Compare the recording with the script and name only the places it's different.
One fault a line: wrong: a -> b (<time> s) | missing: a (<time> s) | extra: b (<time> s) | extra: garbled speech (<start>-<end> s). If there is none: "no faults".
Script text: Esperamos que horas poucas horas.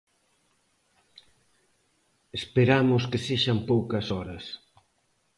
wrong: horas -> sexan (3.3 s)